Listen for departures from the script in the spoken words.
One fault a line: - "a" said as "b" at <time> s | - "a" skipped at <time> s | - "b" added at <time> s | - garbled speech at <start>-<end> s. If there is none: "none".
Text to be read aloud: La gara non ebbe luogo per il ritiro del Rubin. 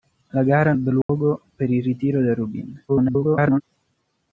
- "non" skipped at 0.7 s
- garbled speech at 2.9-3.6 s